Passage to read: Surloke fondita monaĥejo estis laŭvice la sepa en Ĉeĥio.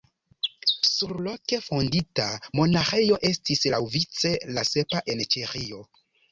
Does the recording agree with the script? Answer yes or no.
yes